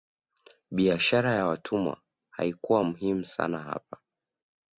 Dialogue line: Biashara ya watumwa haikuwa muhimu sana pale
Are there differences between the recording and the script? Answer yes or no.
yes